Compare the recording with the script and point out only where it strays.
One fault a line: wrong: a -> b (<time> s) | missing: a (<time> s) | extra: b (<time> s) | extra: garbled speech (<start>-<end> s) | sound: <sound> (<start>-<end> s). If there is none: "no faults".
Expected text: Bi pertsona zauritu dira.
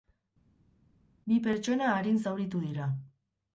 extra: arin (2.0 s)